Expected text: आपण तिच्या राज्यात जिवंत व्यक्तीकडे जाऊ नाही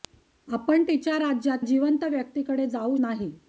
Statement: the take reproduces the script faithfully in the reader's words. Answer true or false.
true